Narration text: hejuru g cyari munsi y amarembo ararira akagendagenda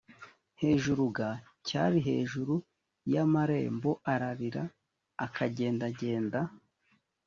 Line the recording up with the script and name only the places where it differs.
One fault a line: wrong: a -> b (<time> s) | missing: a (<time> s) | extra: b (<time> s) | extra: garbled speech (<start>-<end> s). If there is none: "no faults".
wrong: munsi -> hejuru (2.1 s)